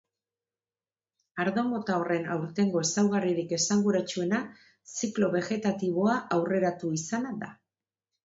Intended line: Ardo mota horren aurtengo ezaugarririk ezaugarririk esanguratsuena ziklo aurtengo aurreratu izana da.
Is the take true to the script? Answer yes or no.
no